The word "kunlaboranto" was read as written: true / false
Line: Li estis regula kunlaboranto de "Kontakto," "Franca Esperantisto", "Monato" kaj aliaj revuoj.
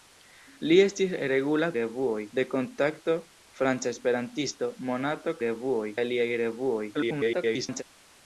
false